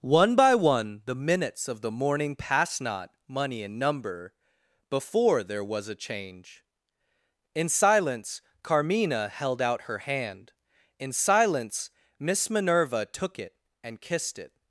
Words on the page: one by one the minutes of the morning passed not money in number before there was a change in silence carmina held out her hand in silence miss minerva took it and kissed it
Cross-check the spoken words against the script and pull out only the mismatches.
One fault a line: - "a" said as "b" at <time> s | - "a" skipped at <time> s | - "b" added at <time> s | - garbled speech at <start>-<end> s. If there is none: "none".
none